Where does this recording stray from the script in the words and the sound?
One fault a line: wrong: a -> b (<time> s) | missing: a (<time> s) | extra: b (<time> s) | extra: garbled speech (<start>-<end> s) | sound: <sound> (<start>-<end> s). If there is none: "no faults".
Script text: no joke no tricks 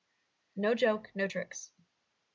no faults